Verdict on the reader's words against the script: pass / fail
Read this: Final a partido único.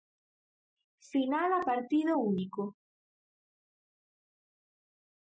pass